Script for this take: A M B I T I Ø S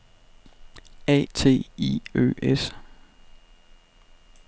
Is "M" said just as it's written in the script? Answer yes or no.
no